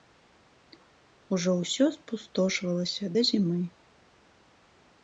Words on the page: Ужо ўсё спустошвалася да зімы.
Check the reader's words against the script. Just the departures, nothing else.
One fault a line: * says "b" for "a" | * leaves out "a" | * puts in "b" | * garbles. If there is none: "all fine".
all fine